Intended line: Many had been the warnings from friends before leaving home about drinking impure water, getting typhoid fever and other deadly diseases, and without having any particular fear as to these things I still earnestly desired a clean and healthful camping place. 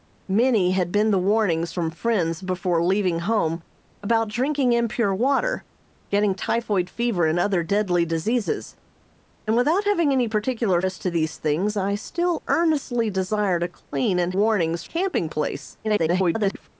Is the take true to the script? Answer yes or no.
no